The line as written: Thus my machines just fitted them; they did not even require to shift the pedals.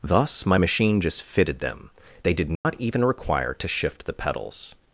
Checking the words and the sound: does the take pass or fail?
fail